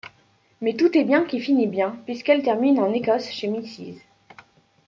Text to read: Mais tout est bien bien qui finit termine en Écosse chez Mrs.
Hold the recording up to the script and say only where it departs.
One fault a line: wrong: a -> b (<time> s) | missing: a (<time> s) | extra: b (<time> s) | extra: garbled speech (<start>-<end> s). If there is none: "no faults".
missing: bien (1.2 s)
extra: bien puisqu'elle (1.7 s)